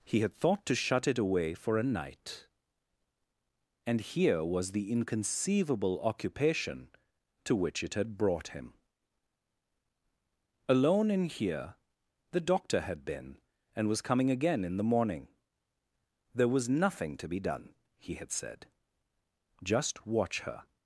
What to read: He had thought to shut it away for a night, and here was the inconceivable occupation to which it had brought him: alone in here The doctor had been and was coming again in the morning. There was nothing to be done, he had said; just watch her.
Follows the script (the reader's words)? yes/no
yes